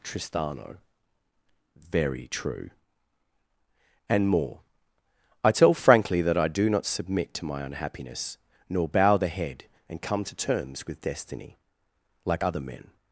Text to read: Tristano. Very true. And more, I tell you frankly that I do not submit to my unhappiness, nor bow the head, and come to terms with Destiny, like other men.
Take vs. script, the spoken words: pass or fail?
fail